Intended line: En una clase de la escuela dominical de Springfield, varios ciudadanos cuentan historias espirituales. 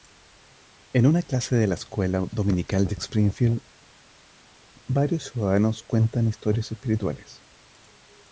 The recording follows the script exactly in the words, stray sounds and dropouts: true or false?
true